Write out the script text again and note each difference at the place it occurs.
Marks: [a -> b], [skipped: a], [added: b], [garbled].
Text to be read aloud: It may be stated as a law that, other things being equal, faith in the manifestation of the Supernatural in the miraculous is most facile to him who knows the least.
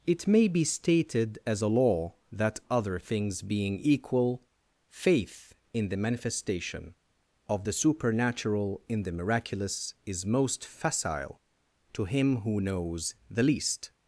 It may be stated as a law that, other things being equal, faith in the manifestation of the Supernatural in the miraculous is most facile to him who knows the least.